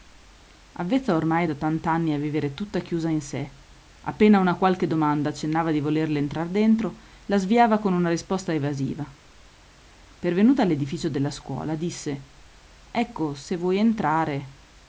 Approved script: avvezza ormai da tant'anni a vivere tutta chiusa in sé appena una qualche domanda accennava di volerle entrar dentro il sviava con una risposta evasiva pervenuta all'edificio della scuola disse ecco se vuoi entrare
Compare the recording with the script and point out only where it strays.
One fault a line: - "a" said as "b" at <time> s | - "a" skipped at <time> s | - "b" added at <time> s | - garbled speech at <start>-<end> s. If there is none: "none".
- "il" said as "la" at 7.3 s